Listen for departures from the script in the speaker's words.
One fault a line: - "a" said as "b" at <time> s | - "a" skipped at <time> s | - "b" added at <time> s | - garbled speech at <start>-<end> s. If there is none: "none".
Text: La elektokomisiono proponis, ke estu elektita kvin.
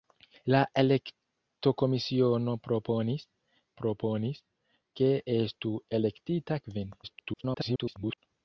- "proponis" added at 3.8 s
- garbled speech at 7.0-8.2 s